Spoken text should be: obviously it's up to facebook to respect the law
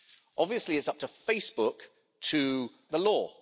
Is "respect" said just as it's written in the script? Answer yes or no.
no